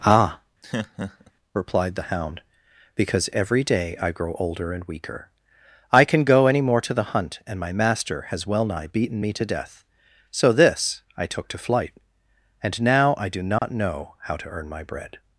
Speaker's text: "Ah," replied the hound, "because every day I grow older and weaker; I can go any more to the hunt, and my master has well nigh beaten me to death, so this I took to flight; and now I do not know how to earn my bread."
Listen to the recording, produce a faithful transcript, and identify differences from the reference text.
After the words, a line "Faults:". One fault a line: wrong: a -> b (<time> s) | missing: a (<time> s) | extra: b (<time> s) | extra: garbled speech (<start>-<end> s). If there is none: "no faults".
"Ah," replied the hound, "because every day I grow older and weaker; I can go any more to the hunt, and my master has well nigh beaten me to death, so this I took to flight; and now I do not know how to earn my bread."
Faults:
no faults